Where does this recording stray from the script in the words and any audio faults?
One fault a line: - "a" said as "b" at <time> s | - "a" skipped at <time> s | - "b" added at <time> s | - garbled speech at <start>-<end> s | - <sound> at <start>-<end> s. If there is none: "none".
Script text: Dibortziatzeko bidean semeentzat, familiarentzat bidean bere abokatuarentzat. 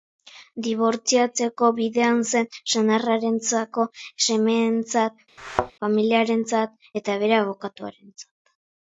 - "zen senarrarentzako" added at 2.3 s
- thud at 5.4-5.7 s
- "bidean" said as "eta" at 7.0 s